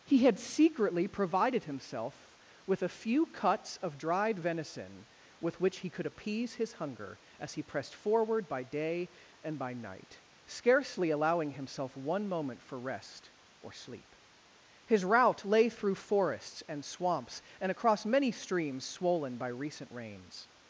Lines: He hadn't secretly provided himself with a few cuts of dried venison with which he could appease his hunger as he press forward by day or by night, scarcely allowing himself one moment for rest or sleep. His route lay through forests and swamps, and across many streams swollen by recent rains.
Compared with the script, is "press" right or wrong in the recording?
wrong